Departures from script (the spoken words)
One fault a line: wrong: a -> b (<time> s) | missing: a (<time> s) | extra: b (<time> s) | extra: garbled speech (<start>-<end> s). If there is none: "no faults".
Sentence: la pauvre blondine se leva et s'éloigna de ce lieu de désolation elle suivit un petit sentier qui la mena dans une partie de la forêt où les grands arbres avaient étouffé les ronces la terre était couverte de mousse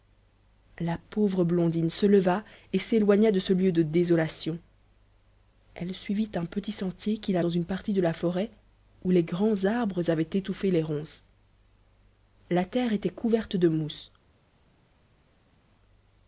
missing: mena (7.4 s)